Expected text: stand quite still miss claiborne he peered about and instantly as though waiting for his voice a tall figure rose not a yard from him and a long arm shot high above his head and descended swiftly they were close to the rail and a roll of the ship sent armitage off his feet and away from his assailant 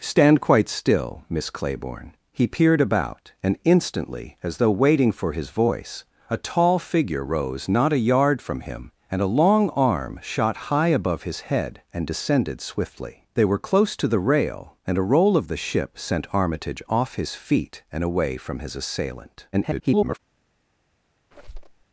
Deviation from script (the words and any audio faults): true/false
true